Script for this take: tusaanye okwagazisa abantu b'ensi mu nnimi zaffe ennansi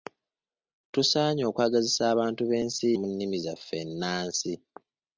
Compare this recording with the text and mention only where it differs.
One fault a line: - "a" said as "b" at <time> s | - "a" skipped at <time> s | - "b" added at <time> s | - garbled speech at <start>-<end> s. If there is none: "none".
none